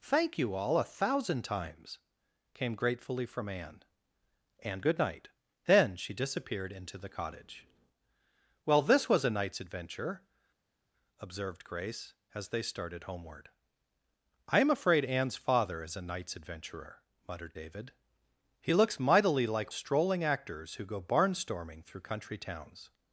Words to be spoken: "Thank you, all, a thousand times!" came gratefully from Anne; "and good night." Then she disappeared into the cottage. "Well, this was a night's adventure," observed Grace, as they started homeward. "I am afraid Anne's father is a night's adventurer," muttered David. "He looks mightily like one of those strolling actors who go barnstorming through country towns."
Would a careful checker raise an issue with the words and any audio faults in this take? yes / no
yes